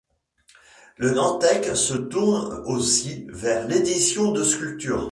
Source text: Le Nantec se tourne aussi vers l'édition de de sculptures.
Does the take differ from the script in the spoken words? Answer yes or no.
yes